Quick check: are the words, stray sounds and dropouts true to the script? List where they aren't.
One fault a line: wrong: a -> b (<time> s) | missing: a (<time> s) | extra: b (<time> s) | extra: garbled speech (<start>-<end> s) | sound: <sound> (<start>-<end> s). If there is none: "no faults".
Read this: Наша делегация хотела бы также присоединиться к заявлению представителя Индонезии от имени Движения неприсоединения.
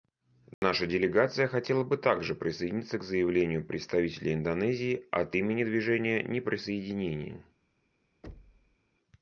sound: dropout (0.5-0.6 s)
sound: thud (8.2-8.8 s)